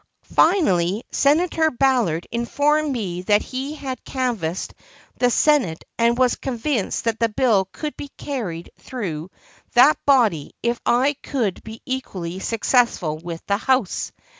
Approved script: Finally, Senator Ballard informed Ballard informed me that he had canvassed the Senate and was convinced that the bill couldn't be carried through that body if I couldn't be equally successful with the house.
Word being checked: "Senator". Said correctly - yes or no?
yes